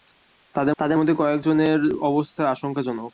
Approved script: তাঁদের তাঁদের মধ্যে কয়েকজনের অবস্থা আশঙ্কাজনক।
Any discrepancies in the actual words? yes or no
no